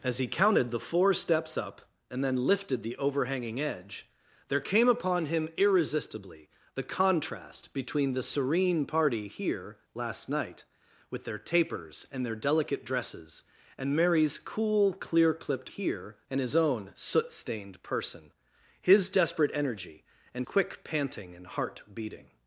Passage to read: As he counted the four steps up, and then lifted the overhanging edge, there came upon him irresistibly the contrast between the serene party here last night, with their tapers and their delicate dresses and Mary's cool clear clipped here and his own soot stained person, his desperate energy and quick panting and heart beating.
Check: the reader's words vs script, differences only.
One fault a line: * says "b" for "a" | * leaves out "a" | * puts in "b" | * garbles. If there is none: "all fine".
all fine